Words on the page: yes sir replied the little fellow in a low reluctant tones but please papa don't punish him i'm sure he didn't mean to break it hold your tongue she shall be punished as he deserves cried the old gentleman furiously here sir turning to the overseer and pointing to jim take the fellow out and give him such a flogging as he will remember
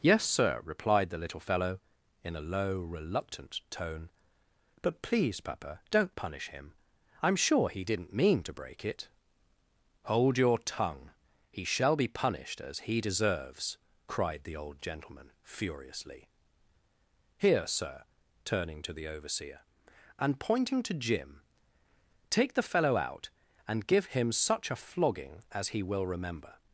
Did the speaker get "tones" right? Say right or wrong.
wrong